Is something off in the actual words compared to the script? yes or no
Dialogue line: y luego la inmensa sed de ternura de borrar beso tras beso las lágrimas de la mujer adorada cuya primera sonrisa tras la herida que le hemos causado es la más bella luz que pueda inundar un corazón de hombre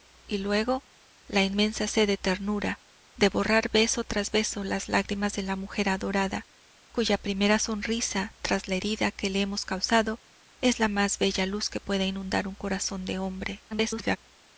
yes